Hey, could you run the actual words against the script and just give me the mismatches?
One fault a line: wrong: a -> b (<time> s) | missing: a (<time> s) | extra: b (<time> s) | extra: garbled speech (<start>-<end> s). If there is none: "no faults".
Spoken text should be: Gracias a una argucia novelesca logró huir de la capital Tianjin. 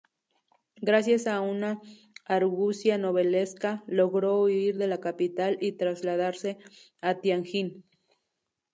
extra: y trasladarse a (5.6 s)